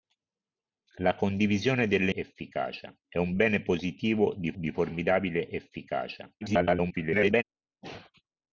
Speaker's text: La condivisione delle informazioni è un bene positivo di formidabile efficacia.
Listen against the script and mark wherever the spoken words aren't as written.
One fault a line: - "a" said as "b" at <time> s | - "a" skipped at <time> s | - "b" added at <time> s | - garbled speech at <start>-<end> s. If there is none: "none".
- "informazioni" said as "efficacia" at 2.1 s
- "di" added at 4.5 s
- garbled speech at 6.4-7.4 s